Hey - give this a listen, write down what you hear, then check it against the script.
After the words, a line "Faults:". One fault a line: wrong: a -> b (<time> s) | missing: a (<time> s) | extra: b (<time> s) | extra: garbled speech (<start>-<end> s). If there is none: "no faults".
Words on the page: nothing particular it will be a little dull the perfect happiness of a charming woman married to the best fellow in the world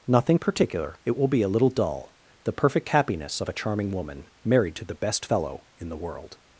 nothing particular it will be a little dull the perfect happiness of a charming woman married to the best fellow in the world
Faults:
no faults